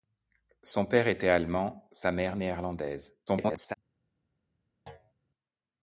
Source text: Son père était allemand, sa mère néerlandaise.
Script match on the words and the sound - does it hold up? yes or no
no